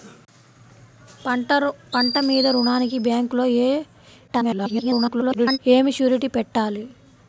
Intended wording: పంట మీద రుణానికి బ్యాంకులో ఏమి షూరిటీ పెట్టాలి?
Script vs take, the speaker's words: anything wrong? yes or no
yes